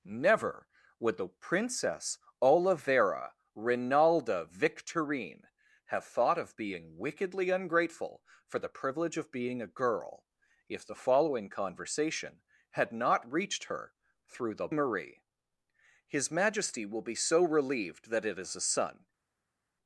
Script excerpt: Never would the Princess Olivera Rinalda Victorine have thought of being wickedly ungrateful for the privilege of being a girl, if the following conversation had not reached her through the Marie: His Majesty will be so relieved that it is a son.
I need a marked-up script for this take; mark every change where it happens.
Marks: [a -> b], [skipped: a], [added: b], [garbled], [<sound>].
Never would the Princess Olivera Rinalda Victorine have thought of being wickedly ungrateful for the privilege of being a girl, if the following conversation had not reached her through the Marie: His Majesty will be so relieved that it is a son.